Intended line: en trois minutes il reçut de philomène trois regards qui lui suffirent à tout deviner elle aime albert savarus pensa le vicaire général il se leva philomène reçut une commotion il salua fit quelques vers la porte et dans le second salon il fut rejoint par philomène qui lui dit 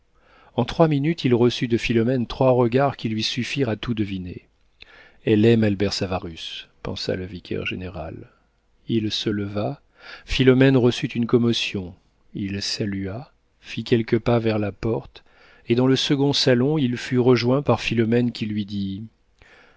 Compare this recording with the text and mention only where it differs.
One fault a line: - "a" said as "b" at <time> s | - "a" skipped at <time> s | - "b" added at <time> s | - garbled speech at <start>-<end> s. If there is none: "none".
- "pas" added at 14.2 s